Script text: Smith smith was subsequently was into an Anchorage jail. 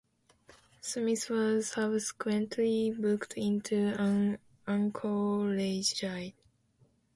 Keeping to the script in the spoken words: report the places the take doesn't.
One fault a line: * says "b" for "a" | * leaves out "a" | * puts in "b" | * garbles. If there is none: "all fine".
* leaves out "smith"
* says "booked" for "was"